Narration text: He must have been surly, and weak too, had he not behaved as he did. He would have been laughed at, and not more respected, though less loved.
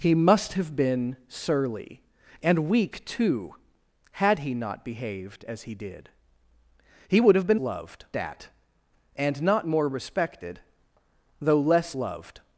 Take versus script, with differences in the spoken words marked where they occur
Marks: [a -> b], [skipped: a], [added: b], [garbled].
He must have been surly, and weak too, had he not behaved as he did. He would have been [laughed -> loved] at, and not more respected, though less loved.